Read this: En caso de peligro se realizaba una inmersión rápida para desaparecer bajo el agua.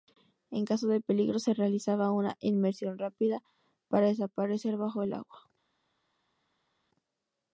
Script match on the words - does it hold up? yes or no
yes